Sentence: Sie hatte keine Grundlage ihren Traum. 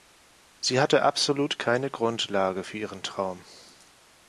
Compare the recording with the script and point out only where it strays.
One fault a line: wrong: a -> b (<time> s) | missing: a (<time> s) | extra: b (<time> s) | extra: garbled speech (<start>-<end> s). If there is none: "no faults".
extra: absolut (1.0 s)
extra: für (2.6 s)